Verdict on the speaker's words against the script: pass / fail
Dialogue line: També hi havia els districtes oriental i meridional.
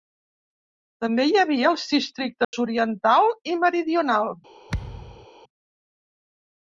pass